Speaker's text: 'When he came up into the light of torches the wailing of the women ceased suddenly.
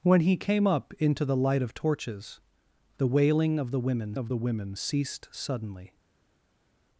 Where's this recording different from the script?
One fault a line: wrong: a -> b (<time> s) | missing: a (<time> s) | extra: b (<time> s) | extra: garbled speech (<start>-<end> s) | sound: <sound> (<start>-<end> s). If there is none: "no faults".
extra: of the women (4.2 s)